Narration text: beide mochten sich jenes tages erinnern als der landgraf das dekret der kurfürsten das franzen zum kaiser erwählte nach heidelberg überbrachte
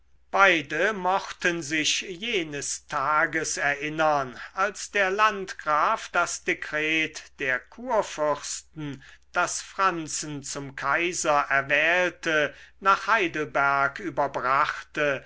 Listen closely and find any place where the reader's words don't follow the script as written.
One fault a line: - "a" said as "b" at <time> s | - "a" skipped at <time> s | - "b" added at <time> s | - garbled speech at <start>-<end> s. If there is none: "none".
none